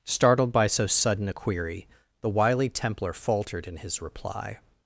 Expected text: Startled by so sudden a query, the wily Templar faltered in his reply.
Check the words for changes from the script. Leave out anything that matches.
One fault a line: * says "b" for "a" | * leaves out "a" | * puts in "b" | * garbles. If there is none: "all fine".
all fine